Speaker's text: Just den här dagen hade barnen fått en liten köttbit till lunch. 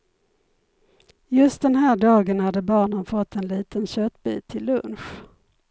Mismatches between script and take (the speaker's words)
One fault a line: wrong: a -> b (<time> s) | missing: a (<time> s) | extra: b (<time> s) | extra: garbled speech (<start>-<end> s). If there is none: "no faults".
no faults